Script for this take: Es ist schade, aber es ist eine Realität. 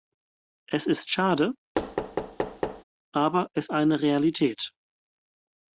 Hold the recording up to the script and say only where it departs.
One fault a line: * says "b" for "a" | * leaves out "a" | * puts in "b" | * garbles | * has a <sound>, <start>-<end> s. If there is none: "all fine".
* has a thud, 1.8-2.8 s
* leaves out "ist"